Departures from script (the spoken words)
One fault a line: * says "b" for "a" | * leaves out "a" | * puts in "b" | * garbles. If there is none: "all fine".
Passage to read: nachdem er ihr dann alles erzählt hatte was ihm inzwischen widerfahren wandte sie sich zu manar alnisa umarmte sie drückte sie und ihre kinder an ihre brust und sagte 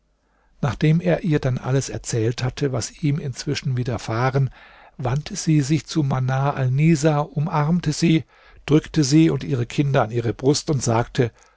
all fine